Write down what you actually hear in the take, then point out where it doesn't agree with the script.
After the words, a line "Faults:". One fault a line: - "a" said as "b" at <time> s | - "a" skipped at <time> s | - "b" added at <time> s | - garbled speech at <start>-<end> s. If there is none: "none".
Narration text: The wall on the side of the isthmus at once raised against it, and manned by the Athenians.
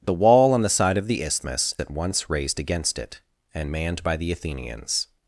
The wall on the side of the isthmus at once raised against it, and manned by the Athenians.
Faults:
none